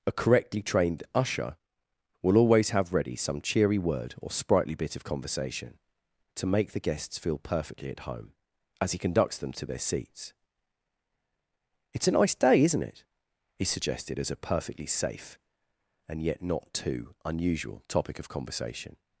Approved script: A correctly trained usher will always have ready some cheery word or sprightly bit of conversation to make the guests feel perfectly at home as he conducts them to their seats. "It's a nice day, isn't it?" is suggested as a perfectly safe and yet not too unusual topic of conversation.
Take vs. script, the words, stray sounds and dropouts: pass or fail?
fail